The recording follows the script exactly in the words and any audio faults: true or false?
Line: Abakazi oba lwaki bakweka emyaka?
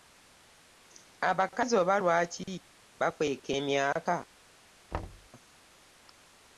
false